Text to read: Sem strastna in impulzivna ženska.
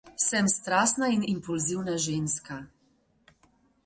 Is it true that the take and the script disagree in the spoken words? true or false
false